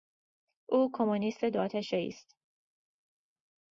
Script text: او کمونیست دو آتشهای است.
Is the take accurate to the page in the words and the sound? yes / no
yes